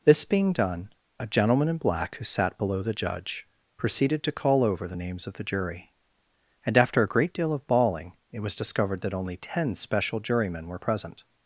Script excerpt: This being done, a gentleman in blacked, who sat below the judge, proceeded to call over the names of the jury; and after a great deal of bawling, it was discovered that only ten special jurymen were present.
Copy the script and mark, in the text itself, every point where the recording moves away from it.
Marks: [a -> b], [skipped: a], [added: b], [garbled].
This being done, a gentleman in [blacked, -> black] who sat below the judge, proceeded to call over the names of the jury; and after a great deal of bawling, it was discovered that only ten special jurymen were present.